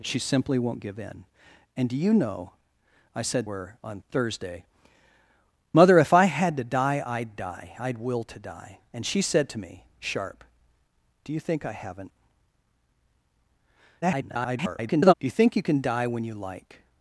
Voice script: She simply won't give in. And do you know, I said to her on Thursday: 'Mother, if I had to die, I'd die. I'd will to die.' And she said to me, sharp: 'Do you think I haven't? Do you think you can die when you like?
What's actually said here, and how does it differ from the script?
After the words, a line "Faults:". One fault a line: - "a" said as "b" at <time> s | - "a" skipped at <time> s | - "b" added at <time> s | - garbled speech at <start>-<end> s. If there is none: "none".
She simply won't give in. And do you know, I said her on Thursday: 'Mother, if I had to die, I'd die. I'd will to die.' And she said to me, sharp: 'Do you think I haven't? [garbled] Do you think you can die when you like?
Faults:
- "to" skipped at 3.5 s
- garbled speech at 14.0-15.1 s